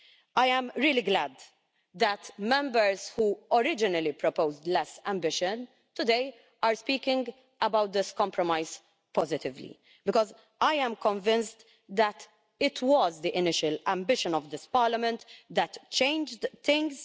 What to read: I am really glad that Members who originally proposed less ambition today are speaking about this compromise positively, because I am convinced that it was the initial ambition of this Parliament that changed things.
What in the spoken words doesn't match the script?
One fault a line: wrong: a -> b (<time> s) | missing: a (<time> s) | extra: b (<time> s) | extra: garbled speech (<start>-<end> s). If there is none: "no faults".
no faults